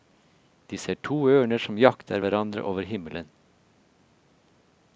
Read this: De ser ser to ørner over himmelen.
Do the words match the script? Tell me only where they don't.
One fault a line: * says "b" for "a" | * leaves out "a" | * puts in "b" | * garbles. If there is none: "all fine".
* leaves out "ser"
* puts in "som jakter hverandre"